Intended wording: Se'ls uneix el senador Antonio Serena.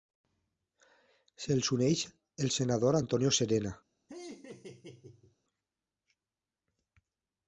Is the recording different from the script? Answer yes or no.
no